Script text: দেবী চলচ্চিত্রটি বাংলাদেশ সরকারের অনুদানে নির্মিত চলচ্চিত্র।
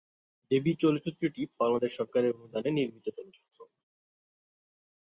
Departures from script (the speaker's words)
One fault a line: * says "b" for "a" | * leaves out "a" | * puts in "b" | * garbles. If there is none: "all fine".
all fine